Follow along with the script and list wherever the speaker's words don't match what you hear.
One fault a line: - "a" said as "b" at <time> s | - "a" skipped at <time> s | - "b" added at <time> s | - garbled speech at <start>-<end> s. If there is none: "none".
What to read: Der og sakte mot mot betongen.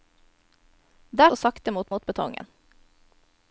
none